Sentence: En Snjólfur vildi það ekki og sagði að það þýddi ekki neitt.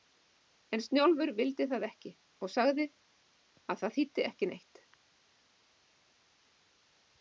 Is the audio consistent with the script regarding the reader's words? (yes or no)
yes